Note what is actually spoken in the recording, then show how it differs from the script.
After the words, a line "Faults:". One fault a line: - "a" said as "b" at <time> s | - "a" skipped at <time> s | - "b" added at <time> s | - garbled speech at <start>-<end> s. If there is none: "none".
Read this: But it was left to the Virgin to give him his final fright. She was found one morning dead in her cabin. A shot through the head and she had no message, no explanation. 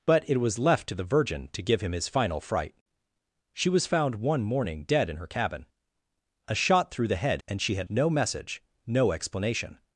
But it was left to the Virgin to give him his final fright. She was found one morning dead in her cabin. A shot through the head and she had no message, no explanation.
Faults:
none